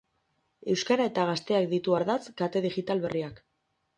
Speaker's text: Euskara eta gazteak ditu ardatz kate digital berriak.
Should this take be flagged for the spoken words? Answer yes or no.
no